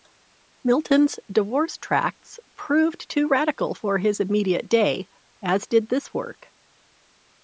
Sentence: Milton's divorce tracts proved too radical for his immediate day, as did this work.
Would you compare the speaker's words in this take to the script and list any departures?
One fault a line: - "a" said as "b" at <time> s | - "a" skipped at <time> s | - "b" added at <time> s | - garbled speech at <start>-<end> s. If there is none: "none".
none